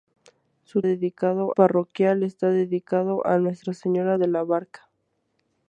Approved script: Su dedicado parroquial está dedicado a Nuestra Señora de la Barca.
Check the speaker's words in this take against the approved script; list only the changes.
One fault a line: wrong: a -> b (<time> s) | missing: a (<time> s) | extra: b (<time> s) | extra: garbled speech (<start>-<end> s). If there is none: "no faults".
no faults